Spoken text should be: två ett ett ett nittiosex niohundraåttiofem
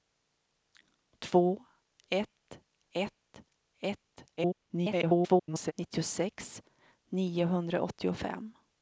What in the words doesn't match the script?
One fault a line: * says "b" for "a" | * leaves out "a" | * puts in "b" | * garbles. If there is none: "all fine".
* garbles